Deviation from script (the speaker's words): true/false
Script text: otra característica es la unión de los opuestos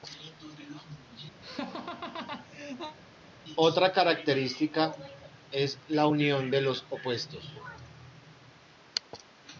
false